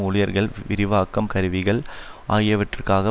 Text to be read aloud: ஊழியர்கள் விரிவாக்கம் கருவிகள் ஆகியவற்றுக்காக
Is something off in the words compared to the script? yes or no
no